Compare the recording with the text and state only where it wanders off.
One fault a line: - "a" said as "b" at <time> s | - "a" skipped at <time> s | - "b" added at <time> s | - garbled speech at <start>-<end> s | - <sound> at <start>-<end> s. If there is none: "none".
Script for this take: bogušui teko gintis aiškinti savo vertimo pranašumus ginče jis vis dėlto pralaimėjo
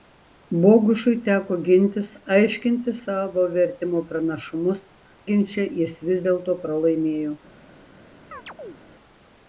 - chirp at 8.3-8.8 s